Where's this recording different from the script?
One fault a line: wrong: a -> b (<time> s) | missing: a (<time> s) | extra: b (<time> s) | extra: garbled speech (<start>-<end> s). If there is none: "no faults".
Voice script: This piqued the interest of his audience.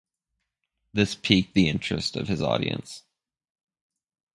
no faults